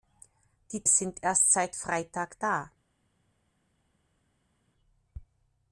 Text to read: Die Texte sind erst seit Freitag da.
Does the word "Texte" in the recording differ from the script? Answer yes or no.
yes